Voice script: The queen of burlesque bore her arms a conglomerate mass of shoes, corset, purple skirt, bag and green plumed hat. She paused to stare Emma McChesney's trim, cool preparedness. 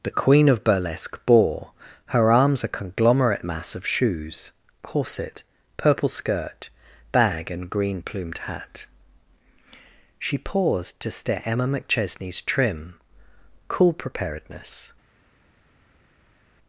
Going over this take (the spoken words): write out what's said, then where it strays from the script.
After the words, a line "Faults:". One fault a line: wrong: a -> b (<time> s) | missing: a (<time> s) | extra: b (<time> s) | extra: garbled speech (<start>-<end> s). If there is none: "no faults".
The queen of burlesque bore her arms a conglomerate mass of shoes, corset, purple skirt, bag and green plumed hat. She paused to stare Emma McChesney's trim, cool preparedness.
Faults:
no faults